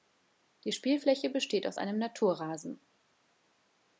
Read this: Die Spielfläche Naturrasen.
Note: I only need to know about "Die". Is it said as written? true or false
true